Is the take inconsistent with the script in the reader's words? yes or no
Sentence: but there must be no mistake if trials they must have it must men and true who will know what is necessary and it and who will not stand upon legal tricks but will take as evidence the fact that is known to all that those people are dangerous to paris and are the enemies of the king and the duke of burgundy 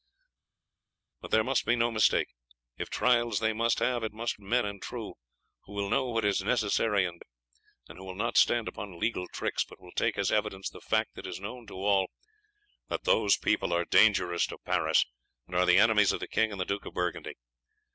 no